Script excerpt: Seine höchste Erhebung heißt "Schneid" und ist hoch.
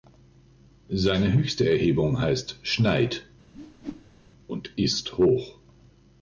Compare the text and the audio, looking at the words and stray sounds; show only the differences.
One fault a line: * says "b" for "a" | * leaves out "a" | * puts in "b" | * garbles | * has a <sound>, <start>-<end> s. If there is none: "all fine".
* has a whoosh, 3.5-4.3 s